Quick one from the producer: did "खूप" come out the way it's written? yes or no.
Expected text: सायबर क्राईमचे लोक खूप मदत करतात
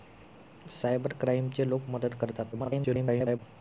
no